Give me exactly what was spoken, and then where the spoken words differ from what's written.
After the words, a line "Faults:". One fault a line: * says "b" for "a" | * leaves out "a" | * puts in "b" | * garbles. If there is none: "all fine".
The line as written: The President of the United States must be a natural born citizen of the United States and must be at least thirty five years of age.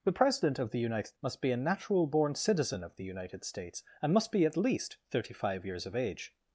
The President of the United Must be a natural born citizen of the United States and must be at least thirty five years of age.
Faults:
* leaves out "States"